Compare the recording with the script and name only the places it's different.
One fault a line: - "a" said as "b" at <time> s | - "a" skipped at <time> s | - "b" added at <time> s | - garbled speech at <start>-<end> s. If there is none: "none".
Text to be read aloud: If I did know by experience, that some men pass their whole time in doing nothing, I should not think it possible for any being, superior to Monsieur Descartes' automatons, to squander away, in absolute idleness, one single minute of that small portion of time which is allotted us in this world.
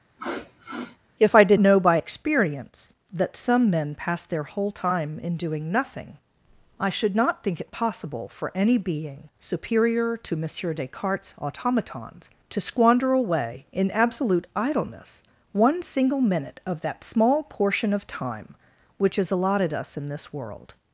none